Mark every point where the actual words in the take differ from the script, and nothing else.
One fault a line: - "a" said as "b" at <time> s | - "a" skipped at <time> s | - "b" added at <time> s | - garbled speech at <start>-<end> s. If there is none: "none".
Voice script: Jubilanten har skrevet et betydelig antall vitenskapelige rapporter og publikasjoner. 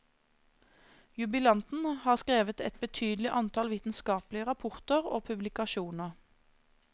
none